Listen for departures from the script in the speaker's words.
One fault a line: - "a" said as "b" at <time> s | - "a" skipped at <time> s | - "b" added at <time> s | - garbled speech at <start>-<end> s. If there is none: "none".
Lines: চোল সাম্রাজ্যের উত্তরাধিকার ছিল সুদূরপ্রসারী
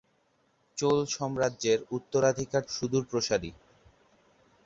- "ছিল" skipped at 2.6 s